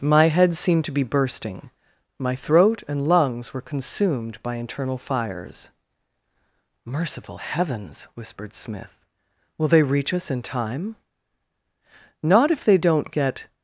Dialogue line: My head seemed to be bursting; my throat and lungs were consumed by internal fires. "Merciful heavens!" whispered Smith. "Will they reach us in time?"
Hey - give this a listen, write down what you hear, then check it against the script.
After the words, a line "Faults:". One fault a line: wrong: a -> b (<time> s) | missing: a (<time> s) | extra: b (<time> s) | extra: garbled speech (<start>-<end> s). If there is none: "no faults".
My head seemed to be bursting; my throat and lungs were consumed by internal fires. "Merciful heavens!" whispered Smith. "Will they reach us in time?" "Not if they don't get
Faults:
extra: Not if they don't get (12.2 s)